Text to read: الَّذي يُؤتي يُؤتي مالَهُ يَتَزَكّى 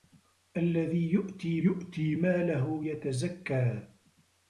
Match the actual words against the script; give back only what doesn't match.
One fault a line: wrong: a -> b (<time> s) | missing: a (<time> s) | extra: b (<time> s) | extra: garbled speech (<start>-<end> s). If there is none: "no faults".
no faults